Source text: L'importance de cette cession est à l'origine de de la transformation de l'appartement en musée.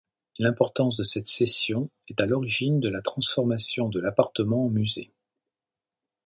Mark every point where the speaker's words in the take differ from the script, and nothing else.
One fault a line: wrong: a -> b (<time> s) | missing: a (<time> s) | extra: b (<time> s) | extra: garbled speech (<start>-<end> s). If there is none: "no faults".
missing: de (2.9 s)